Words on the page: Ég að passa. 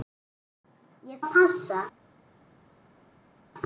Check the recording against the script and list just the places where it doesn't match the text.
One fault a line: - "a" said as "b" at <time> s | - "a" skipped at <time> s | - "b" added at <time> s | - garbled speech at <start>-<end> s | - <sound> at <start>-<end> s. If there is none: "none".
none